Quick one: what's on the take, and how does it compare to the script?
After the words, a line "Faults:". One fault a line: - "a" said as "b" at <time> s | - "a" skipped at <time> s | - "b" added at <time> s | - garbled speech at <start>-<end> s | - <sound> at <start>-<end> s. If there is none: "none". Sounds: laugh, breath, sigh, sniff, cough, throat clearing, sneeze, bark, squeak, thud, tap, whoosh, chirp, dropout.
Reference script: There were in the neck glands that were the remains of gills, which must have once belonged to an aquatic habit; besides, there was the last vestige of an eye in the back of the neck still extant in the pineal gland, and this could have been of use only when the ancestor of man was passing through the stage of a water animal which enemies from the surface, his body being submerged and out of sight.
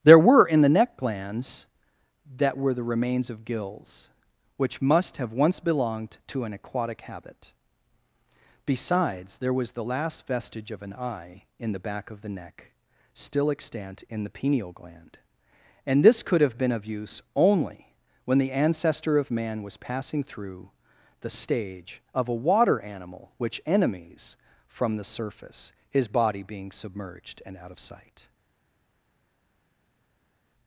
There were in the neck glands that were the remains of gills, which must have once belonged to an aquatic habit; besides, there was the last vestige of an eye in the back of the neck still extant in the pineal gland, and this could have been of use only when the ancestor of man was passing through the stage of a water animal which enemies from the surface, his body being submerged and out of sight.
Faults:
none